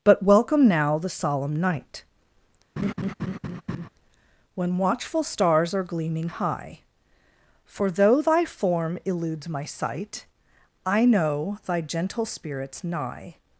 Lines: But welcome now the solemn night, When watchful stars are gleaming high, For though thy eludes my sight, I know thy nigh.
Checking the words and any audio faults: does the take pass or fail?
fail